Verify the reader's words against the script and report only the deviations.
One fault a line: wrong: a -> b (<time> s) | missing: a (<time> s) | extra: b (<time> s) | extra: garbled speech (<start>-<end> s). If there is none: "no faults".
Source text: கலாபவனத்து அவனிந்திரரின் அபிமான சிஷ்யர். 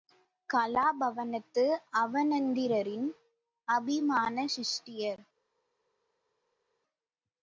no faults